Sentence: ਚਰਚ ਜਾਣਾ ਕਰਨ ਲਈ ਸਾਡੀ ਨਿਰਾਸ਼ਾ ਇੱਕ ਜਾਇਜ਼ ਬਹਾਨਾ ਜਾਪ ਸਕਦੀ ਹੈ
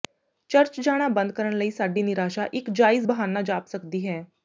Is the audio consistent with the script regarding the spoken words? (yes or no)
no